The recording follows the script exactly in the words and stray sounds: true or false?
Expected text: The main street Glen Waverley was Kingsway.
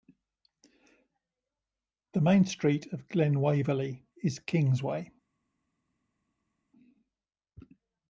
false